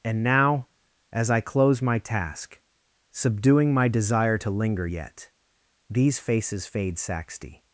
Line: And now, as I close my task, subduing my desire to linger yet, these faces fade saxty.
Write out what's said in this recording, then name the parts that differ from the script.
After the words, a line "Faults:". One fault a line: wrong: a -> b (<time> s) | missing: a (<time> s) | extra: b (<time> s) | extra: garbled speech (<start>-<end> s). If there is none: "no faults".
And now, as I close my task, subduing my desire to linger yet, these faces fade saxty.
Faults:
no faults